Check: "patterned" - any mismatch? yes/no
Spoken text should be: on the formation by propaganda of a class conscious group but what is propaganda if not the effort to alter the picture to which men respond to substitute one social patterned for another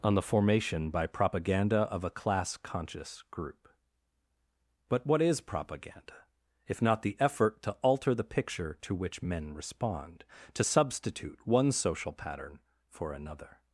yes